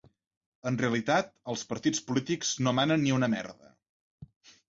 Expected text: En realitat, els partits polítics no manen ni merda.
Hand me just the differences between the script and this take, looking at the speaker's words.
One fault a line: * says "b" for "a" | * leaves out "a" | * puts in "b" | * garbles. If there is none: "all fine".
* puts in "una"